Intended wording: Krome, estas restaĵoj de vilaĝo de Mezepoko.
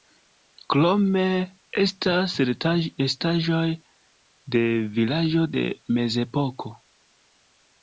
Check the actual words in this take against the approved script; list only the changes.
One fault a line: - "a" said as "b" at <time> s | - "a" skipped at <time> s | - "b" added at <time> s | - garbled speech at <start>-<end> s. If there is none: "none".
none